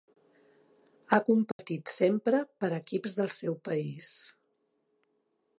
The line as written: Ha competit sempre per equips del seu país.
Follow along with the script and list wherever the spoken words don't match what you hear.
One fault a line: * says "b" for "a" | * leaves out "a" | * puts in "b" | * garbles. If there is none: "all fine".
all fine